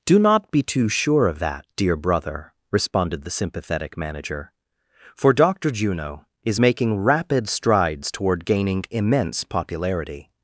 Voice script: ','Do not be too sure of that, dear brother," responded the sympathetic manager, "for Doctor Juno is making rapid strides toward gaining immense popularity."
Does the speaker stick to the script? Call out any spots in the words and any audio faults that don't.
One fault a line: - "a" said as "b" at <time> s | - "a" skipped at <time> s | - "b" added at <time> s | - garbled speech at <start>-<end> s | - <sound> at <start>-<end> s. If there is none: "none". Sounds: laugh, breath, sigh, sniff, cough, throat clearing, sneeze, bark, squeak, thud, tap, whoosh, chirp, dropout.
none